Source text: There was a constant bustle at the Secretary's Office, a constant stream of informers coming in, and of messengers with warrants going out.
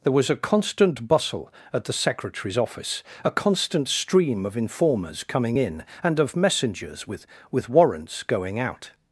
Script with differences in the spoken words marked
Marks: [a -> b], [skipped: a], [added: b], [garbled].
There was a constant bustle at the Secretary's Office, a constant stream of informers coming in, and of messengers with [added: with] warrants going out.